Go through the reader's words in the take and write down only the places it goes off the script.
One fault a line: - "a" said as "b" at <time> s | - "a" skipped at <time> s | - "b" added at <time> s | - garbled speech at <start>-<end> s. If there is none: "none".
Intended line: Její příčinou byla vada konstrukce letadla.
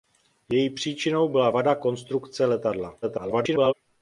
- garbled speech at 3.0-3.7 s